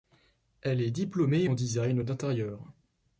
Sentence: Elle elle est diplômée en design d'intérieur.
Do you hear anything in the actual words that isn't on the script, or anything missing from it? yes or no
yes